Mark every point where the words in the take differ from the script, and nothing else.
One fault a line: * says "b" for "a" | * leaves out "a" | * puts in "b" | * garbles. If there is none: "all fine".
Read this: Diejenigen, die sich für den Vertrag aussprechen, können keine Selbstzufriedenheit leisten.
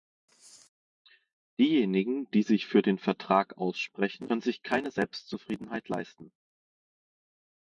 * puts in "sich"